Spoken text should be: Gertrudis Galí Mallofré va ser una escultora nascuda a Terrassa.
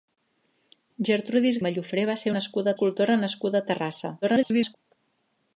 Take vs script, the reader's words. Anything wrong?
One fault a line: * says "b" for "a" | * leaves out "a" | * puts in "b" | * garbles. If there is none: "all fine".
* leaves out "Galí"
* says "nascuda" for "una"
* garbles